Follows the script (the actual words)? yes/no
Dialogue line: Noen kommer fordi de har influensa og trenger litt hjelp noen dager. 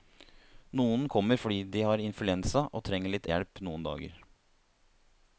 yes